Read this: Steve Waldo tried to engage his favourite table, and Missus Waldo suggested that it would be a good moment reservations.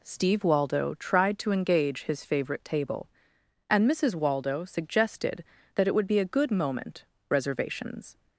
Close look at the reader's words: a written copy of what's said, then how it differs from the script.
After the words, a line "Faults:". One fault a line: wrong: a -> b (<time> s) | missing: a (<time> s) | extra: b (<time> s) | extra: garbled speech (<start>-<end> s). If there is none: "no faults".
Steve Waldo tried to engage his favourite table, and Missus Waldo suggested that it would be a good moment reservations.
Faults:
no faults